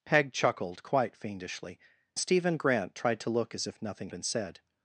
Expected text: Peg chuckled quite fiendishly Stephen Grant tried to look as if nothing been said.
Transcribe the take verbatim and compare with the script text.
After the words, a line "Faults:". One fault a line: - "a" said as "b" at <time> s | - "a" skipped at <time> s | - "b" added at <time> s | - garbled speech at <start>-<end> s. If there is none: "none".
Peg chuckled quite fiendishly Stephen Grant tried to look as if nothing been said.
Faults:
none